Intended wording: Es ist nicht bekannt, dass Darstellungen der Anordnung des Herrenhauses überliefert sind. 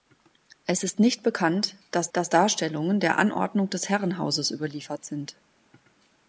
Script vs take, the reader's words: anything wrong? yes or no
yes